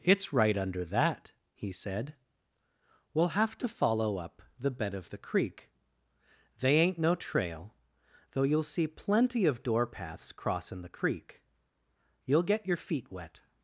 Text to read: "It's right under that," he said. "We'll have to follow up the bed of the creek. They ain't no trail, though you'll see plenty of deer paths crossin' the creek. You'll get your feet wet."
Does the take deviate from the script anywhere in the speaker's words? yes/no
yes